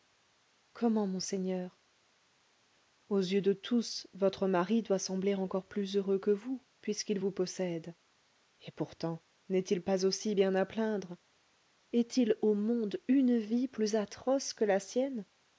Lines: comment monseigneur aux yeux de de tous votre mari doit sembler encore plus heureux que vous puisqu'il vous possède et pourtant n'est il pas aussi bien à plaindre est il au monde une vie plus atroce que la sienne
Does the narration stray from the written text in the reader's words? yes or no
yes